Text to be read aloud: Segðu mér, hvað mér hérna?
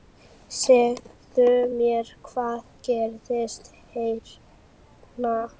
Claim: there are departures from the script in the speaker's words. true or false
true